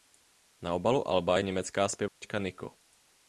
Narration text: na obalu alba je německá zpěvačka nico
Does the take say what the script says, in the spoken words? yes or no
yes